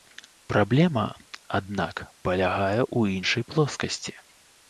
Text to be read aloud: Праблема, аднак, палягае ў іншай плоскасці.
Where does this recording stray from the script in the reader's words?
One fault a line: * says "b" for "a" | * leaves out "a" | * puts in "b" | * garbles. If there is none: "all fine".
all fine